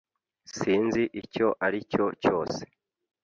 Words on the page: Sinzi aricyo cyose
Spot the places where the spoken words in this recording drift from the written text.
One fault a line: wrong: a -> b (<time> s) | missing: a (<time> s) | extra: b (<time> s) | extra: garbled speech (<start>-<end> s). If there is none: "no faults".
extra: icyo (1.2 s)